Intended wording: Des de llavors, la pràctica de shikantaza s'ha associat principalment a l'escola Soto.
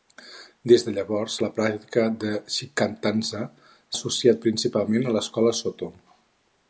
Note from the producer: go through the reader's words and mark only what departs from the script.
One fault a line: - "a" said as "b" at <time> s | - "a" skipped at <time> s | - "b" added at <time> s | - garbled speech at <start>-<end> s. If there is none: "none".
- "s'ha" skipped at 3.4 s